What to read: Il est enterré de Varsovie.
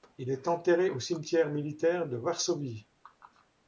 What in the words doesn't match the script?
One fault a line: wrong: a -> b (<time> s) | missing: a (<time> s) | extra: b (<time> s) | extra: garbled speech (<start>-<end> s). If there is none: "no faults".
extra: au cimetière militaire (0.9 s)